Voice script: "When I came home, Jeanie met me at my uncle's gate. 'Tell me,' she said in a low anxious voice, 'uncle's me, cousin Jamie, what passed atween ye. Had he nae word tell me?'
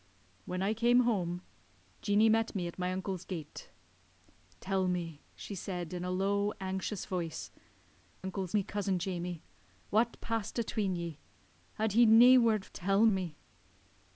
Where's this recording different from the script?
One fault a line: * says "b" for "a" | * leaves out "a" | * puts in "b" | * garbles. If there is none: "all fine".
all fine